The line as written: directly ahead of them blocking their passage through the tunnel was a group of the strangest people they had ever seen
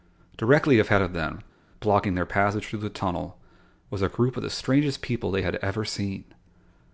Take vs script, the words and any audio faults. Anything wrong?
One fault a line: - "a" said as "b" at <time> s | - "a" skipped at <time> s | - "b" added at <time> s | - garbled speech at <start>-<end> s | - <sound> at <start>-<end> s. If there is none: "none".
none